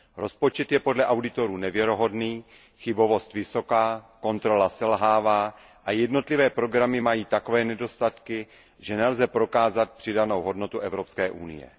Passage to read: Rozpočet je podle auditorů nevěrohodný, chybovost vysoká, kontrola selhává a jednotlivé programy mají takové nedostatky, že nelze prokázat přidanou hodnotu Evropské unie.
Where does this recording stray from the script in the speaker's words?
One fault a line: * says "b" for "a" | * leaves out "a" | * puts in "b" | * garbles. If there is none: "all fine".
all fine